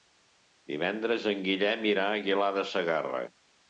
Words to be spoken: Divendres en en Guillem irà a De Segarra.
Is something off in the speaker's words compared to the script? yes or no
yes